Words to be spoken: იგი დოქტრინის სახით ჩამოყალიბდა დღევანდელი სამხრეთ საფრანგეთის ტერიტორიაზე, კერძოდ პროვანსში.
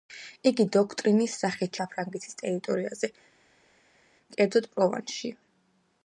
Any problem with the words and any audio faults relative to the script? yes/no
yes